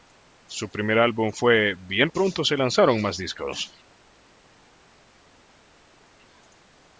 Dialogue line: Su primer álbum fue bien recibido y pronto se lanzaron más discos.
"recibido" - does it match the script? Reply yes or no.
no